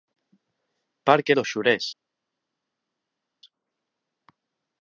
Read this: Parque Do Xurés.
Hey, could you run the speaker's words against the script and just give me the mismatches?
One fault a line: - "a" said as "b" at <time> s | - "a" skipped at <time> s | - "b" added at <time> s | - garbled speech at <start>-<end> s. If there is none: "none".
none